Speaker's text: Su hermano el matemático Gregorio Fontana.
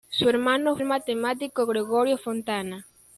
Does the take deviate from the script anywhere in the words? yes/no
no